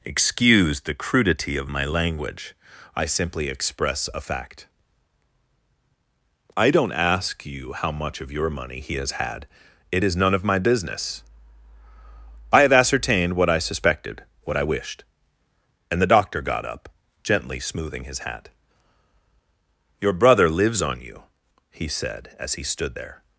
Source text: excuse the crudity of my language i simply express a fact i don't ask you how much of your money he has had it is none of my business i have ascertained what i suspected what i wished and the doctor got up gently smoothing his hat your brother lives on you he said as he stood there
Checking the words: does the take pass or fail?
pass